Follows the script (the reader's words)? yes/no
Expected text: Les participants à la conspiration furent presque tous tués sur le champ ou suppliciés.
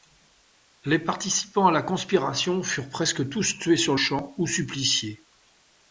no